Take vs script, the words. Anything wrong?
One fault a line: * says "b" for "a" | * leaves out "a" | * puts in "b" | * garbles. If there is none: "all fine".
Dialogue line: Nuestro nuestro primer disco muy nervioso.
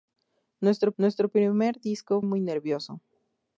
all fine